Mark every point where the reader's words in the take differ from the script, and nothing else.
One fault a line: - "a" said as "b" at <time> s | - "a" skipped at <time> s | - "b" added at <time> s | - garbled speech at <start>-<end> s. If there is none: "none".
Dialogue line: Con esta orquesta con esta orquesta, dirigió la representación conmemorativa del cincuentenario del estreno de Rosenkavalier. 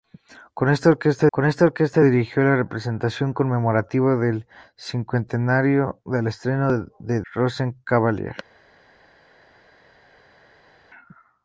none